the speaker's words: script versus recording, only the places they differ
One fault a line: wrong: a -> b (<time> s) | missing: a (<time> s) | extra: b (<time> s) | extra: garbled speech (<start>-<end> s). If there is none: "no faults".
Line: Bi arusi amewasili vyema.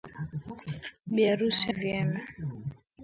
missing: amewasili (1.7 s)